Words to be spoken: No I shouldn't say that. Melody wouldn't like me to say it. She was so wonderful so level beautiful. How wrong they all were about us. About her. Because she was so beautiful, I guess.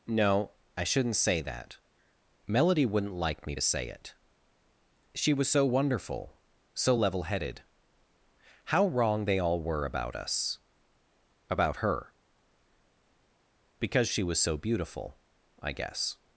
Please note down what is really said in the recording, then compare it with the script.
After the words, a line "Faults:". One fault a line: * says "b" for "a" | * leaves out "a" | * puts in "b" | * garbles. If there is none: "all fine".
No I shouldn't say that. Melody wouldn't like me to say it. She was so wonderful so level headed. How wrong they all were about us. About her. Because she was so beautiful, I guess.
Faults:
* says "headed" for "beautiful"